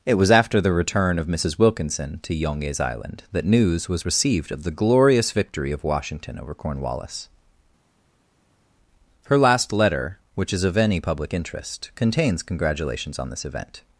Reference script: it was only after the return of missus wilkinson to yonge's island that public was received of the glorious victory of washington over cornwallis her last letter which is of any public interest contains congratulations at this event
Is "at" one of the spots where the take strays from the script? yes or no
yes